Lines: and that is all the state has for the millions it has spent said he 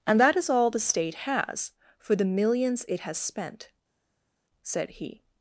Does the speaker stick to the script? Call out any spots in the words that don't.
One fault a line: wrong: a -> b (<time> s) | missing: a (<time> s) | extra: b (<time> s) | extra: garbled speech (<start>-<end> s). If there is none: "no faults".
no faults